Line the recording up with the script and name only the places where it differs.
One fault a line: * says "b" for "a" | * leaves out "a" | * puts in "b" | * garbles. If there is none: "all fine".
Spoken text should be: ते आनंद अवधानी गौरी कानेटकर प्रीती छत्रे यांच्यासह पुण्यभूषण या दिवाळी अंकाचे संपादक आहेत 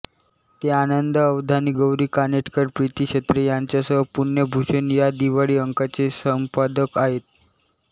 all fine